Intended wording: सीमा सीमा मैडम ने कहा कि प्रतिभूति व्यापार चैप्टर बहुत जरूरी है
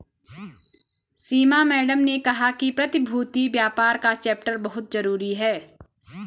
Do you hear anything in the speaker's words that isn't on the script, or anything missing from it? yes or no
yes